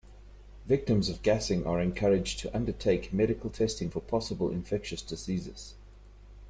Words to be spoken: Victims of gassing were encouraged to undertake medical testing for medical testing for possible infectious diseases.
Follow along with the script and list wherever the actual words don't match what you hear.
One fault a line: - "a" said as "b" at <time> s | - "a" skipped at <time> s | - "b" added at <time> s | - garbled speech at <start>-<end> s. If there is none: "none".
- "were" said as "are" at 1.7 s
- "medical testing for" skipped at 4.0 s